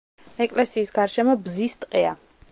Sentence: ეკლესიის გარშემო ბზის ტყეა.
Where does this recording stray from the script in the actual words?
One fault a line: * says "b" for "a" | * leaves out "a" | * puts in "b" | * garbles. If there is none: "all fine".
all fine